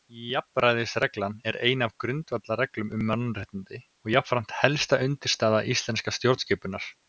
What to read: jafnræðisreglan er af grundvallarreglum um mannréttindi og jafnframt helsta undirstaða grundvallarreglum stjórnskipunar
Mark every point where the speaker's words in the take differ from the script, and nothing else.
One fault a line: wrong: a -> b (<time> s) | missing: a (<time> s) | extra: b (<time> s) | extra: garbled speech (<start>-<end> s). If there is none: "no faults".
extra: ein (1.7 s)
wrong: grundvallarreglum -> íslenskrar (5.7 s)